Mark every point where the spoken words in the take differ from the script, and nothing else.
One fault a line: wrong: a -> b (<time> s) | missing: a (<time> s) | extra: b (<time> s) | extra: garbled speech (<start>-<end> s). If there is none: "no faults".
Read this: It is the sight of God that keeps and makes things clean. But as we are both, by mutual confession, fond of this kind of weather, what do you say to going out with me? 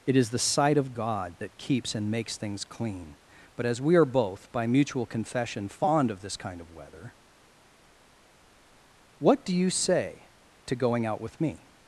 no faults